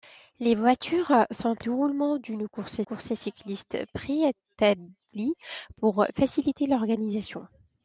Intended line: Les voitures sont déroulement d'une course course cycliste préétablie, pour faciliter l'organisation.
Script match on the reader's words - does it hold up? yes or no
yes